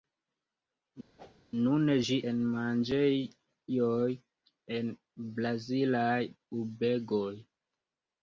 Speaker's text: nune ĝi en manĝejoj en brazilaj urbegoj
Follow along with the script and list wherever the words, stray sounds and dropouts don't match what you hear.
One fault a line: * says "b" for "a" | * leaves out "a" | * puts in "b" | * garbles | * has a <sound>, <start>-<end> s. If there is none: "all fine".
* has a whoosh, 1.2-1.4 s